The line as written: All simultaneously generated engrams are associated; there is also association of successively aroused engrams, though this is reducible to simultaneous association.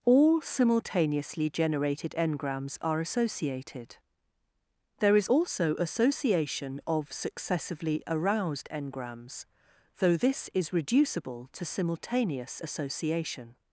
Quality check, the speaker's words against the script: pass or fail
pass